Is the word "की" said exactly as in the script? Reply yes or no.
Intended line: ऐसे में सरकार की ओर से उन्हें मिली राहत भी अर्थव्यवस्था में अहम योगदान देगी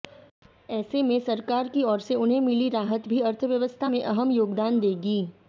yes